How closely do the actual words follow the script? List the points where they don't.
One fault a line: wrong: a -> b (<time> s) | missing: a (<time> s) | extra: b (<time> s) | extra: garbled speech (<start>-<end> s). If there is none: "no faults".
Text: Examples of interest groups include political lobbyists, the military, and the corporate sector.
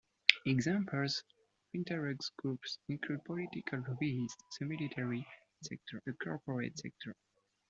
wrong: and -> sector (5.6 s)